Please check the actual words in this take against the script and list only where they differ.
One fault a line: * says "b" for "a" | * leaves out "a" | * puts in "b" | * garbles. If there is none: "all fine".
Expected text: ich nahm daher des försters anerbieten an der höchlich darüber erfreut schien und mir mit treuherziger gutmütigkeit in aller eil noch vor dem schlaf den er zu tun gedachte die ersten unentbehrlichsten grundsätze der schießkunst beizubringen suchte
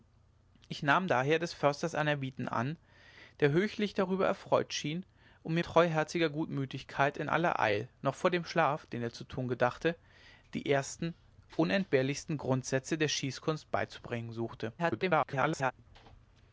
* leaves out "mit"
* garbles